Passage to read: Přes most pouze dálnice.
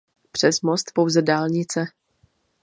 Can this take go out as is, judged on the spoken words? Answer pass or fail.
pass